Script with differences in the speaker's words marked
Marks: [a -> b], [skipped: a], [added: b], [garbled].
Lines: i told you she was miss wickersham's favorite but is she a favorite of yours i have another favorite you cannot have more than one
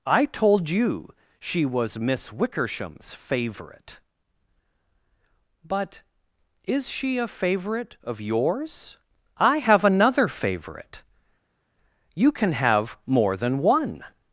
i told you she was miss wickersham's favorite but is she a favorite of yours i have another favorite you [cannot -> can] have more than one